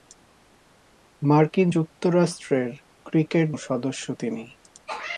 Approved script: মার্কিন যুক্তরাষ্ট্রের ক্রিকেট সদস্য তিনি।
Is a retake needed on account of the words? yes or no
no